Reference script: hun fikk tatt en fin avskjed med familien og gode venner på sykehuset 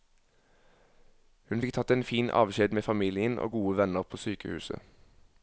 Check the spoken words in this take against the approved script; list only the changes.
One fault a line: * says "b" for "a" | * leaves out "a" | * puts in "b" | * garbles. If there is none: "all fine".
all fine